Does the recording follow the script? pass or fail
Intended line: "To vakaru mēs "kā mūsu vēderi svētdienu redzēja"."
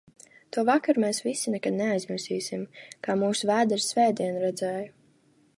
fail